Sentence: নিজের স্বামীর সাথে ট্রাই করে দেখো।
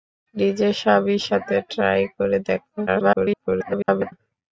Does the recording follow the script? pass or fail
fail